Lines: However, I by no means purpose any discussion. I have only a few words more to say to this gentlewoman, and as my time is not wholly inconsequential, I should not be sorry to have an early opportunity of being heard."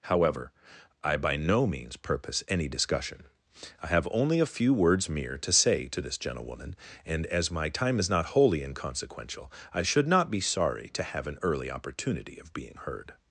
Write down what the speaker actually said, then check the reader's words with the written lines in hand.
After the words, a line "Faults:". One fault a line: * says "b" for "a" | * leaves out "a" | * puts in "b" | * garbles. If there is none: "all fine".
However, I by no means purpose any discussion. I have only a few words mere to say to this gentlewoman, and as my time is not wholly inconsequential, I should not be sorry to have an early opportunity of being heard."
Faults:
* says "mere" for "more"